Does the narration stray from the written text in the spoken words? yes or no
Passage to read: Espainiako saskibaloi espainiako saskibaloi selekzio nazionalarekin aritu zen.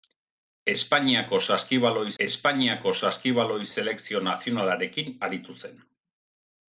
no